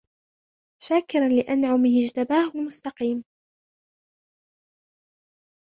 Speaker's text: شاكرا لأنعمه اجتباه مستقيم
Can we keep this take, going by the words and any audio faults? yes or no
yes